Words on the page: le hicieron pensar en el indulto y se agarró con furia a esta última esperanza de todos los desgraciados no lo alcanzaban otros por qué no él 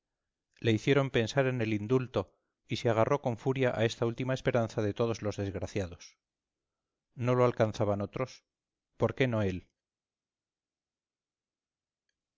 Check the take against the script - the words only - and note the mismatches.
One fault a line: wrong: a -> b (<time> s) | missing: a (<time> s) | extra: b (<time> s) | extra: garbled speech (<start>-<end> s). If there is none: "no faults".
no faults